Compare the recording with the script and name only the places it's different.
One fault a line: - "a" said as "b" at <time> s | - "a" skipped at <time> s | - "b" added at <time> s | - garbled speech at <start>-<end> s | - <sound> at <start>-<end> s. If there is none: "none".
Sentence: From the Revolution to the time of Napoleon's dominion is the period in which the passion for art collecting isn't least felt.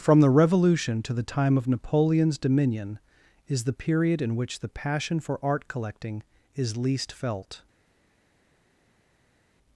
- "isn't" said as "is" at 6.5 s